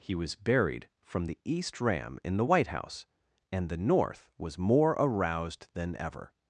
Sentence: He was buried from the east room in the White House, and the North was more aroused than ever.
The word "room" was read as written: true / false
false